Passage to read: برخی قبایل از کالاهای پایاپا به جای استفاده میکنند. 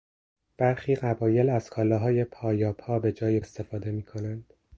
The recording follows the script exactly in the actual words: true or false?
true